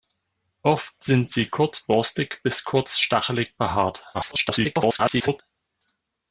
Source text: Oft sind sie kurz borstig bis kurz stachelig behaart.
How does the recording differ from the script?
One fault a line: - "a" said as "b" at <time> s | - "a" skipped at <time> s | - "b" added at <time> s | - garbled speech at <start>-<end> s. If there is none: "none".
- garbled speech at 4.1-5.4 s